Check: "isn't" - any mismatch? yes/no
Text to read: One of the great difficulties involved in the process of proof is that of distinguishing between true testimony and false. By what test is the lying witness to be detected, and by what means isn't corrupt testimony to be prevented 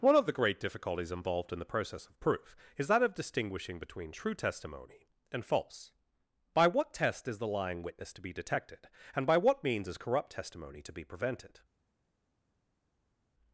yes